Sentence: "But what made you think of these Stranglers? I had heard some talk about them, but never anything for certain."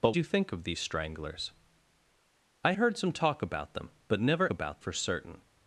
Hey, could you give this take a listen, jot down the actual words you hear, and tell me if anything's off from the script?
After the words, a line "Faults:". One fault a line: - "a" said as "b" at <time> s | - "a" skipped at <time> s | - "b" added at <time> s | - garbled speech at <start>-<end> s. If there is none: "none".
"But you think of these Stranglers? I heard some talk about them, but never about for certain."
Faults:
- "what made" skipped at 0.1 s
- "had" skipped at 2.7 s
- "anything" said as "about" at 4.5 s